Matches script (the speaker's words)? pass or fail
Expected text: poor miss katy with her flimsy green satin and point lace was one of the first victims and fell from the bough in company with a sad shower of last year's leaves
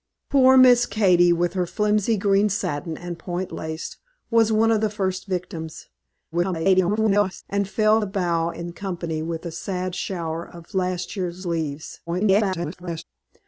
fail